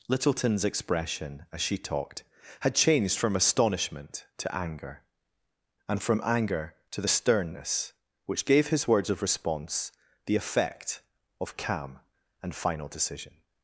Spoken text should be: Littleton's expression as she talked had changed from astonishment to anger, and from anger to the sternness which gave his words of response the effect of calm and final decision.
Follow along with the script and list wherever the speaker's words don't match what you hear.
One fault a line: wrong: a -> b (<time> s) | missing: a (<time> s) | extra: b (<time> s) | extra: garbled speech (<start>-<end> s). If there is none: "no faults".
no faults